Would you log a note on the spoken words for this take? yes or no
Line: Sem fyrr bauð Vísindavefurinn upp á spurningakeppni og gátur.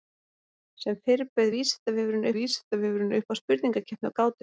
yes